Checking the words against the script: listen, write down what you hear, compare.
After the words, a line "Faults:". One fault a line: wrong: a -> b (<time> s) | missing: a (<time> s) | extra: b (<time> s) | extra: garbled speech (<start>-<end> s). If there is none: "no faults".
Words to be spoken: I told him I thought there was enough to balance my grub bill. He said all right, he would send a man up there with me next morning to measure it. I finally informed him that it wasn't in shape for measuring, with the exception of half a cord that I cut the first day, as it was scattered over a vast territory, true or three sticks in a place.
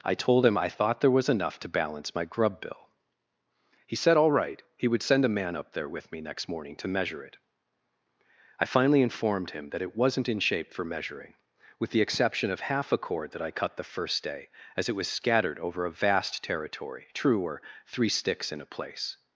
I told him I thought there was enough to balance my grub bill. He said all right, he would send a man up there with me next morning to measure it. I finally informed him that it wasn't in shape for measuring, with the exception of half a cord that I cut the first day, as it was scattered over a vast territory, true or three sticks in a place.
Faults:
no faults